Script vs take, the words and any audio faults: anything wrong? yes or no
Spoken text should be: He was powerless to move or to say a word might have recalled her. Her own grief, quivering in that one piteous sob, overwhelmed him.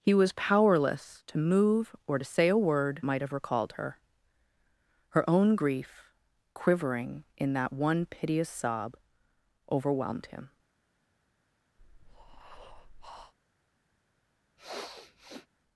yes